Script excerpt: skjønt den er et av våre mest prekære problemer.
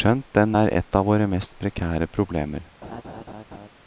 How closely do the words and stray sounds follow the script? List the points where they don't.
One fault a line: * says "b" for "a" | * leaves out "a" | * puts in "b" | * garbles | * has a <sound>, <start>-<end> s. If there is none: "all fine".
* has a laugh, 2.8-3.7 s